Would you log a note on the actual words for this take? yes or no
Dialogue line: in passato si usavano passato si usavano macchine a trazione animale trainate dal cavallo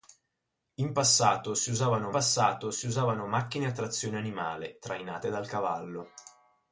no